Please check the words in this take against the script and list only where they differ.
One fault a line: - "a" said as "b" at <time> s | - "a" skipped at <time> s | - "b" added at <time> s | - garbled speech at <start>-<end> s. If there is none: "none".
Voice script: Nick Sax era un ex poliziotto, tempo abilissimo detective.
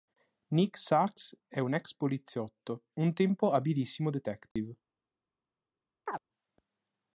- "era" said as "è" at 1.4 s
- "un" added at 2.9 s